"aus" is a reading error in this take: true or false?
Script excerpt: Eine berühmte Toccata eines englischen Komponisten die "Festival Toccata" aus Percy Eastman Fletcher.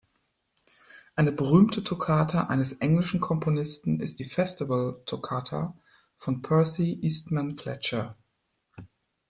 true